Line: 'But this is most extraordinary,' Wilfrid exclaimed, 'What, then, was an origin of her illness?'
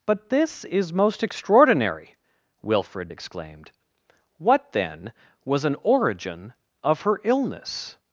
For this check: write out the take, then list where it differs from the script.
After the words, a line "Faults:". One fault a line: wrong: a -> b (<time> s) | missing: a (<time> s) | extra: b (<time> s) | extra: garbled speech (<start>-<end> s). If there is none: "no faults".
'But this is most extraordinary,' Wilfrid exclaimed, 'What, then, was an origin of her illness?'
Faults:
no faults